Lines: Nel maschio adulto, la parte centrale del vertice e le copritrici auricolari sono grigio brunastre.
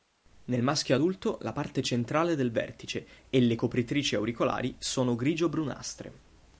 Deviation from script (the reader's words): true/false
false